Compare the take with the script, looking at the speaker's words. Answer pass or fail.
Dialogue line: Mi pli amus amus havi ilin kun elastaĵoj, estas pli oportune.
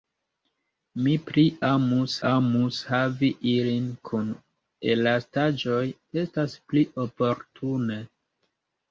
pass